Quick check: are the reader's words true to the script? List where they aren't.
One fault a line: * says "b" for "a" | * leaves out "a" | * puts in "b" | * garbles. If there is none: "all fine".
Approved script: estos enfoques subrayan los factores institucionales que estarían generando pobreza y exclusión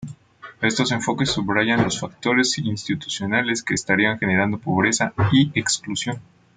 all fine